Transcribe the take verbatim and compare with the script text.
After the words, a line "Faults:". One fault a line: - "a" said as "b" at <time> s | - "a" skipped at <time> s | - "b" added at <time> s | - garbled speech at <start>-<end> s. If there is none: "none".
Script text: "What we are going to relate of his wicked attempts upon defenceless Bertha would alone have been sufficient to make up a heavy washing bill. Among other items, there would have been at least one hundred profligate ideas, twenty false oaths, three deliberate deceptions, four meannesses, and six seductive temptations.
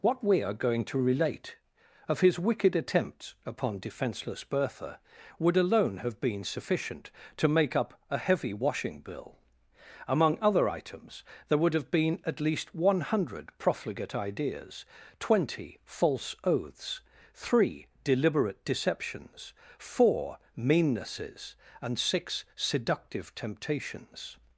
"What we are going to relate of his wicked attempts upon defenceless Bertha would alone have been sufficient to make up a heavy washing bill. Among other items, there would have been at least one hundred profligate ideas, twenty false oaths, three deliberate deceptions, four meannesses, and six seductive temptations.
Faults:
none